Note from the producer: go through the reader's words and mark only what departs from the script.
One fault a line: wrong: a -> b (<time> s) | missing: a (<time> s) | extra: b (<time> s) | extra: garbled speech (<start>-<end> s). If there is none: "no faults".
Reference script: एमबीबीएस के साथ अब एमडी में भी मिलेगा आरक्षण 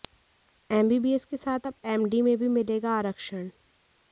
no faults